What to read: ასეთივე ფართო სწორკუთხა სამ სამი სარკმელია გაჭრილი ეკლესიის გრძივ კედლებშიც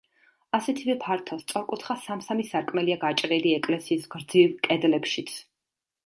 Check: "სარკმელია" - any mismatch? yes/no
no